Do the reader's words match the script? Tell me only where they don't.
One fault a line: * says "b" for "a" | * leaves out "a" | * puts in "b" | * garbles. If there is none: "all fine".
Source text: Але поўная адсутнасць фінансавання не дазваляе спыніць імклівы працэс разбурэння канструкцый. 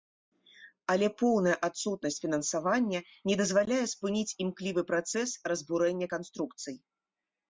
all fine